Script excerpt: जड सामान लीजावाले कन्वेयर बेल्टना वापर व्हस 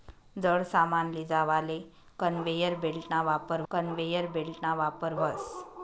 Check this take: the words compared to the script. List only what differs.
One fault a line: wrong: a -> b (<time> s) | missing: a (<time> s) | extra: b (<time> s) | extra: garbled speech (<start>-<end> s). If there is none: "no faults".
extra: कन्वेयर बेल्टना वापर (3.7 s)